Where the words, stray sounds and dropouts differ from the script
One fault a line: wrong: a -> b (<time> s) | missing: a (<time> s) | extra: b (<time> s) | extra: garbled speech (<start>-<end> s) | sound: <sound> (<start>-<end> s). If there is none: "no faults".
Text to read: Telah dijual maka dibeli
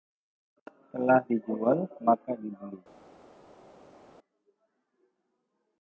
no faults